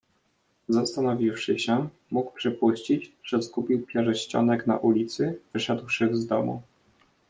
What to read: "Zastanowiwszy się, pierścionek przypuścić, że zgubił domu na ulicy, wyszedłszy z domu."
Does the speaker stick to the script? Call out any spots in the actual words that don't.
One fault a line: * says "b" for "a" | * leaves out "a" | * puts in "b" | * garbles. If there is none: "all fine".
* says "mógł" for "pierścionek"
* says "pierścionek" for "domu"